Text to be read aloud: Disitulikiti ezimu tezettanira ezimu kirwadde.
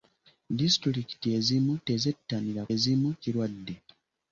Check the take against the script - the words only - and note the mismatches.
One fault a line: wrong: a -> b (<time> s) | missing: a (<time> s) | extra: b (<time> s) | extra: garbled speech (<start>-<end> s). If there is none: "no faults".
no faults